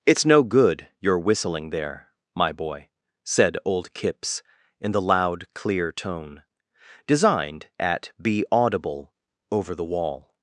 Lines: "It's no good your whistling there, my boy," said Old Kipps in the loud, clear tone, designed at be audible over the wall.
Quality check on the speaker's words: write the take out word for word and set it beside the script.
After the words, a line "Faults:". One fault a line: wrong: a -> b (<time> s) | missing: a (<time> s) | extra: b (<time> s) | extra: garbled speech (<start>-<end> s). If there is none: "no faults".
"It's no good your whistling there, my boy," said Old Kipps in the loud, clear tone, designed at be audible over the wall.
Faults:
no faults